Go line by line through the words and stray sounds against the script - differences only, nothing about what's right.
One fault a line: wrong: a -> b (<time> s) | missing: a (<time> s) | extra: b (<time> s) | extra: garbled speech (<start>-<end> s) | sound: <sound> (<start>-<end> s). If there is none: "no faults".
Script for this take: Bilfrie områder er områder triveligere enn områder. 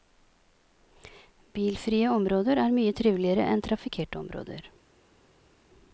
wrong: områder -> mye (2.8 s)
extra: trafikkerte (3.6 s)